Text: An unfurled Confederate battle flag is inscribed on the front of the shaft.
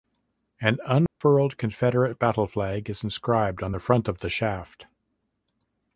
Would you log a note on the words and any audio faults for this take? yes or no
yes